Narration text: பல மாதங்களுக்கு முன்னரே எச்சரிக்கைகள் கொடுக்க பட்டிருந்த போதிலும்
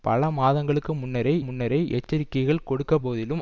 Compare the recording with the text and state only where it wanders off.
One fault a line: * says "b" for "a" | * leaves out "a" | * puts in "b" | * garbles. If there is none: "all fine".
* puts in "முன்னரே"
* leaves out "பட்டிருந்த"